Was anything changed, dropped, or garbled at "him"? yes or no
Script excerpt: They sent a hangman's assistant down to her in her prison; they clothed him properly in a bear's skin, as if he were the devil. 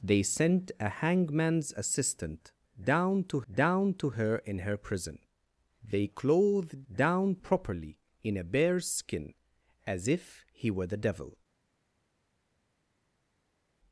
yes